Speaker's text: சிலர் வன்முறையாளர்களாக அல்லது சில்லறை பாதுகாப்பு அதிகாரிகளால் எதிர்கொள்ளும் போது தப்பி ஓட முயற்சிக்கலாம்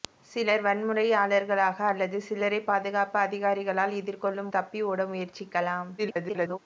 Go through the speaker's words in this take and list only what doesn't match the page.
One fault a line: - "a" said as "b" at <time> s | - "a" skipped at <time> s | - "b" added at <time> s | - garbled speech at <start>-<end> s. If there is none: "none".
- "போது" skipped at 4.5 s
- garbled speech at 6.0-6.6 s